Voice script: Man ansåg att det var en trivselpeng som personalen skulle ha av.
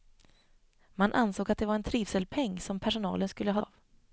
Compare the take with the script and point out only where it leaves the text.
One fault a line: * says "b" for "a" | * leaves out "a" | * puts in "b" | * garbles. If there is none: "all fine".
all fine